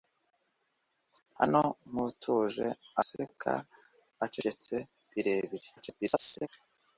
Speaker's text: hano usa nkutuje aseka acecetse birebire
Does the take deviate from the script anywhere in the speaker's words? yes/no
yes